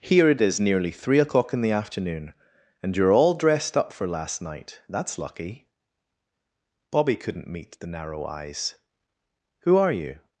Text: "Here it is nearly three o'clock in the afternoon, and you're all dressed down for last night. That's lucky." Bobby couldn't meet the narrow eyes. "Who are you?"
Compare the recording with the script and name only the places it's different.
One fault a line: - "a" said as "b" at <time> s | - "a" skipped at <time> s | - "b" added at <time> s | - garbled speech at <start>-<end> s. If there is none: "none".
- "down" said as "up" at 3.8 s